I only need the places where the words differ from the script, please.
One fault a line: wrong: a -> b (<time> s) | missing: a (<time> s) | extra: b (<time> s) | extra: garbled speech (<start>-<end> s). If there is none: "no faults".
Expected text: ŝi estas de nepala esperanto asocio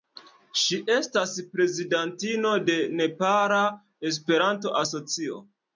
extra: prezidantino (1.5 s)